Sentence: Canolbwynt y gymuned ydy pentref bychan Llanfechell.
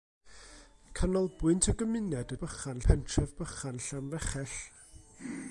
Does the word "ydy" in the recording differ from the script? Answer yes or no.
yes